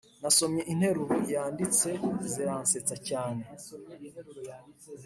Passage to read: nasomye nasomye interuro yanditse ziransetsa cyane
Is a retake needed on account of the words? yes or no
yes